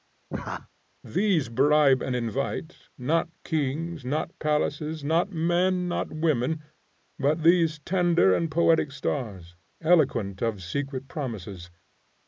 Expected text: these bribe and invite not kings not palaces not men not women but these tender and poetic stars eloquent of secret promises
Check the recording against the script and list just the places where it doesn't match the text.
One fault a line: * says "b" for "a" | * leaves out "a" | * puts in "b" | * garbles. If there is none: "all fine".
all fine